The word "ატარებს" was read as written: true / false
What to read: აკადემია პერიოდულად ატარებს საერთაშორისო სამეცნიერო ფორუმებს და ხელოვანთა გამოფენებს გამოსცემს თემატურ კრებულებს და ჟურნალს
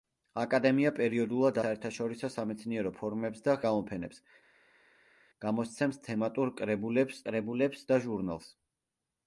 false